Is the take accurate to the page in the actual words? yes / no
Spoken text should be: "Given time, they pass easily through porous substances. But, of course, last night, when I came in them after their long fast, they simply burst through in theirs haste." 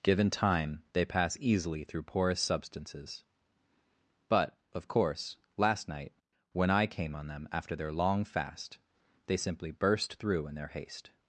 no